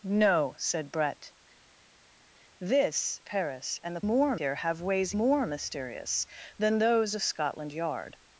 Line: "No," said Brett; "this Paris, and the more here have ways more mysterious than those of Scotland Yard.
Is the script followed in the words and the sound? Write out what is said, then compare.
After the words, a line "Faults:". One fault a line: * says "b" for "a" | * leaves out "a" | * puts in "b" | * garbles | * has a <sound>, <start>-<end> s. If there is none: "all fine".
"No," said Brett; "this Paris, and the more here have ways more mysterious than those of Scotland Yard.
Faults:
all fine